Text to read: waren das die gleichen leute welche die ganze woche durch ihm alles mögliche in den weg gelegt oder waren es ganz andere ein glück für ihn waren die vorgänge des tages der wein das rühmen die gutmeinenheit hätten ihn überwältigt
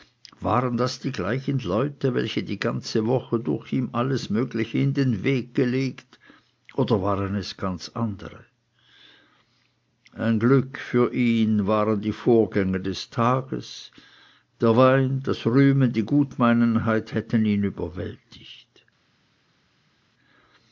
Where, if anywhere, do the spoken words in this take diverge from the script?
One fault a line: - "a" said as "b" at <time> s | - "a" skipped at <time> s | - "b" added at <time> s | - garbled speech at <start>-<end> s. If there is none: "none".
none